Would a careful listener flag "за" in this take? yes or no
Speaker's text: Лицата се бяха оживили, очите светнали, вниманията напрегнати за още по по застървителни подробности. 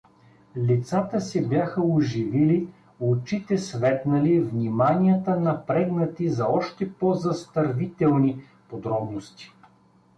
no